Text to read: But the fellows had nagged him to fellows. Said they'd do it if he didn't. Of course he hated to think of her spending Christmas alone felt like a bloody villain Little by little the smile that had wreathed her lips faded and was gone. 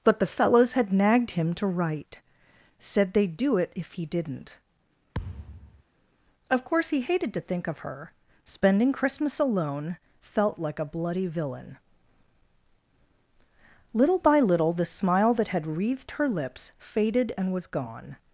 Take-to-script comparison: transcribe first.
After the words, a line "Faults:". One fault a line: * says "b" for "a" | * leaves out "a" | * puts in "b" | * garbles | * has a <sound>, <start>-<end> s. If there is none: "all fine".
But the fellows had nagged him to write. Said they'd do it if he didn't. Of course he hated to think of her spending Christmas alone felt like a bloody villain Little by little the smile that had wreathed her lips faded and was gone.
Faults:
* says "write" for "fellows"
* has a thud, 5.1-5.8 s